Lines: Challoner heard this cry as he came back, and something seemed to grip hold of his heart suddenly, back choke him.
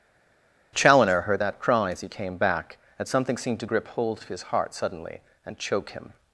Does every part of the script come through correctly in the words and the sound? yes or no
no